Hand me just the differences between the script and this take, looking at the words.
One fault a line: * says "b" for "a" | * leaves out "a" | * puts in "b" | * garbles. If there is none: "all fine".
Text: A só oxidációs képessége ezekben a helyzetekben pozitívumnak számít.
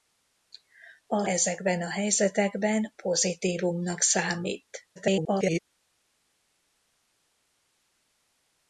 * leaves out "só oxidációs képessége"
* garbles